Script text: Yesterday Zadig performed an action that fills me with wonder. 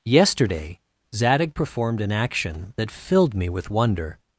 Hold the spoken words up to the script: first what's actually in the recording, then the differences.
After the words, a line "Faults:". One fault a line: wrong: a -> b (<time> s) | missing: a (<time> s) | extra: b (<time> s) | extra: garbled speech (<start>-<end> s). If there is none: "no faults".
Yesterday Zadig performed an action that filled me with wonder.
Faults:
wrong: fills -> filled (2.9 s)